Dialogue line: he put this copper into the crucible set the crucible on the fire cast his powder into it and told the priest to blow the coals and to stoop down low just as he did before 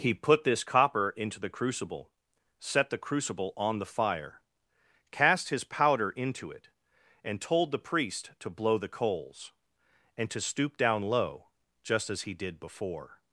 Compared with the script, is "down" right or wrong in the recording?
right